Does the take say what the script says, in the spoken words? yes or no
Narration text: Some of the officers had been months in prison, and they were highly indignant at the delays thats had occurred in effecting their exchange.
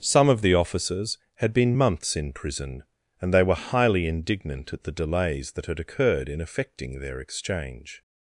no